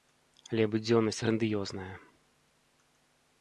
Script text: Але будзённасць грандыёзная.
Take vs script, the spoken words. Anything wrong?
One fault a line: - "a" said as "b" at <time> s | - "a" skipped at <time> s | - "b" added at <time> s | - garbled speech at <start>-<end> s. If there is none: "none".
none